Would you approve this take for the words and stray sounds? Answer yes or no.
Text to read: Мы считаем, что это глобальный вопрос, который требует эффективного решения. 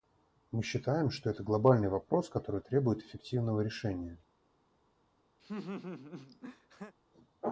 no